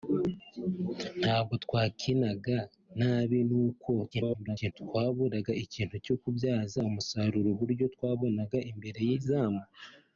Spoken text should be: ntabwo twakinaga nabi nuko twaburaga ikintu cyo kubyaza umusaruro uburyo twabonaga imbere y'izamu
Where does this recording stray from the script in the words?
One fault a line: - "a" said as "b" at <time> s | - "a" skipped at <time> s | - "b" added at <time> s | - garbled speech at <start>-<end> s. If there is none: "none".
- garbled speech at 4.1-4.7 s